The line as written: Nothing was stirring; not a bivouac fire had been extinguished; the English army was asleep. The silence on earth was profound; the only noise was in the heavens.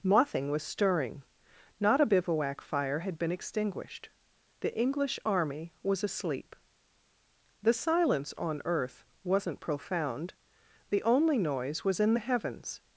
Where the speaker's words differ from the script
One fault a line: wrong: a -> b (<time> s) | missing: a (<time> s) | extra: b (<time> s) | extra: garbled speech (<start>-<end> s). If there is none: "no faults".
wrong: was -> wasn't (9.2 s)